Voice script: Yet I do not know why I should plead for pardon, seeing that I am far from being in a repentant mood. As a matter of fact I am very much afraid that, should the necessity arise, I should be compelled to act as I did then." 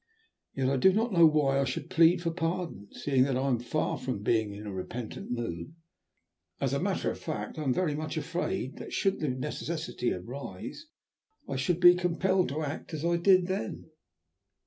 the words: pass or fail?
pass